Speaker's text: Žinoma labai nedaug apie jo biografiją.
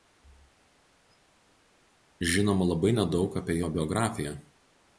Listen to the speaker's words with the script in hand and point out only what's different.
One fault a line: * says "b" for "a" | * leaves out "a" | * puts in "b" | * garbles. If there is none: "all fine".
all fine